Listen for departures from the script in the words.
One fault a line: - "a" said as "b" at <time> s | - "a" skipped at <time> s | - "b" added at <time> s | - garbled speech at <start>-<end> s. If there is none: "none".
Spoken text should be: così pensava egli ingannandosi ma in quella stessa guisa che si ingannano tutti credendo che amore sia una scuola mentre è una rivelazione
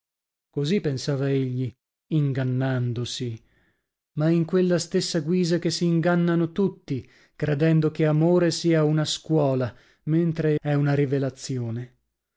none